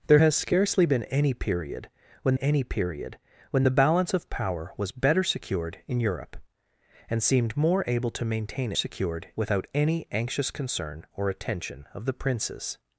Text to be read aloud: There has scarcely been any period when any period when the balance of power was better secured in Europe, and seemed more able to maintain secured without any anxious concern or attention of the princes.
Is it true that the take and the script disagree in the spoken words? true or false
false